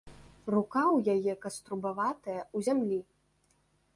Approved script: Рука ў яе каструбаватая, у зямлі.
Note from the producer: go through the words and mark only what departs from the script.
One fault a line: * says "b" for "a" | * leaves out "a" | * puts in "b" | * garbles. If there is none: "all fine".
all fine